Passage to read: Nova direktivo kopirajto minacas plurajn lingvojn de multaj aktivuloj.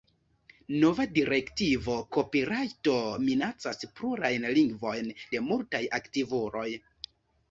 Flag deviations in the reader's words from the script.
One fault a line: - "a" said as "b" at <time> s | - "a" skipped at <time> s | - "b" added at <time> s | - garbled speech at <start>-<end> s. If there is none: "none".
none